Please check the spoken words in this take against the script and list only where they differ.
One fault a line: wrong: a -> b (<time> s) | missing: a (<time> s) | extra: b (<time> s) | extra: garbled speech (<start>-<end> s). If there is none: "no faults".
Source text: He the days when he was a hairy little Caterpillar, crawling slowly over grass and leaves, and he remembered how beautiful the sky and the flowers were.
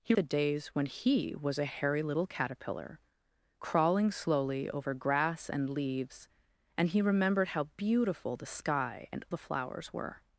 no faults